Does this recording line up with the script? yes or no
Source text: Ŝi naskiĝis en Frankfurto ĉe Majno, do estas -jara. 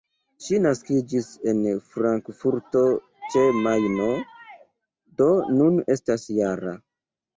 no